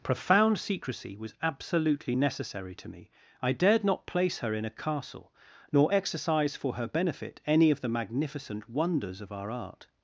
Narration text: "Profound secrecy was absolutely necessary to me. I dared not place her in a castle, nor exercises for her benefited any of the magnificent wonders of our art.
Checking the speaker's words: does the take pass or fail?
fail